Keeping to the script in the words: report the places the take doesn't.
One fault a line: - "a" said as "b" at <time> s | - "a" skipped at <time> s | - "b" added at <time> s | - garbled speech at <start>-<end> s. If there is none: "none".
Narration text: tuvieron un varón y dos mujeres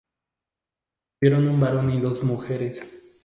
none